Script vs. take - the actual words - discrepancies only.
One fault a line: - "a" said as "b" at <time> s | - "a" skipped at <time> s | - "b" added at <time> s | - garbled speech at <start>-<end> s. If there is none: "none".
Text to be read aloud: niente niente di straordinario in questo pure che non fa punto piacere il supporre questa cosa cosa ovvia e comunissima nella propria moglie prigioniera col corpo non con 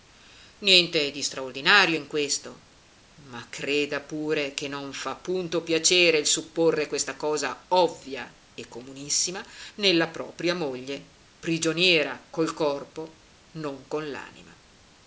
- "niente" skipped at 1.1 s
- "ma creda" added at 3.3 s
- "cosa" skipped at 7.6 s